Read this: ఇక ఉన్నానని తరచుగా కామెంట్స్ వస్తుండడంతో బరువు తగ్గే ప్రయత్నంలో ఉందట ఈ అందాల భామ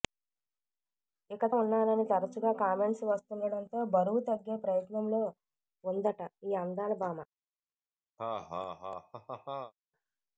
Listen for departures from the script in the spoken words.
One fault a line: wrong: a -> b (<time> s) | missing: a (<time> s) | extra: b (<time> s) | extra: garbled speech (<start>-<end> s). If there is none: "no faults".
no faults